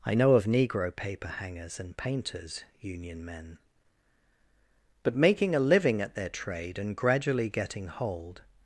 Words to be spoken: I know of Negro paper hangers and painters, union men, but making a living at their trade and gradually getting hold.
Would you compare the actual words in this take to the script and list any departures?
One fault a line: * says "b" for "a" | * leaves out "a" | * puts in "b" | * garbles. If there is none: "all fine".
all fine